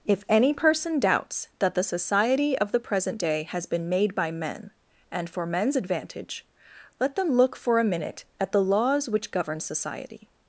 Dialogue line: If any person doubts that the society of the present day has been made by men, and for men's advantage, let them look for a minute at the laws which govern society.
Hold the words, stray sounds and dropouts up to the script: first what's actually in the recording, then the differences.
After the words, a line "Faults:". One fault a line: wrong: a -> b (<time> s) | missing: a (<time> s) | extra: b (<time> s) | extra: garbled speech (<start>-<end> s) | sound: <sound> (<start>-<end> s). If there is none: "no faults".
If any person doubts that the society of the present day has been made by men, and for men's advantage, let them look for a minute at the laws which govern society.
Faults:
no faults